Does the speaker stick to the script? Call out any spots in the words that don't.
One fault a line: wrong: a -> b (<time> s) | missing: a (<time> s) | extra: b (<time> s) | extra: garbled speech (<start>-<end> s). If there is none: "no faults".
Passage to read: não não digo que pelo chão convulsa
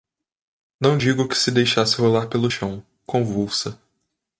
missing: não (1.0 s)
extra: se deixasse rolar (1.4 s)